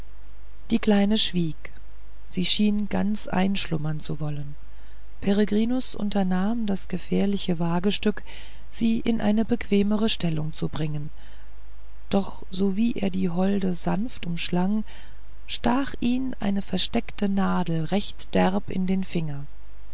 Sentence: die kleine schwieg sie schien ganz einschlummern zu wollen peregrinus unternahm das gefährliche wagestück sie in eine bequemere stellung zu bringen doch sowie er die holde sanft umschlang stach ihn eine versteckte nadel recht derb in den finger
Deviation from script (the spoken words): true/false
false